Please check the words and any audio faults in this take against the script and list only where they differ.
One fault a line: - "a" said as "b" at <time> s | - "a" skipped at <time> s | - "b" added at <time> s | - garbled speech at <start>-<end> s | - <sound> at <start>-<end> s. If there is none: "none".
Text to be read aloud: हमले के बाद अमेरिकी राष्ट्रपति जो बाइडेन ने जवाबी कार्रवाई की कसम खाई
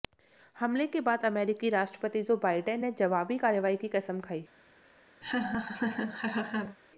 - laugh at 5.2-6.8 s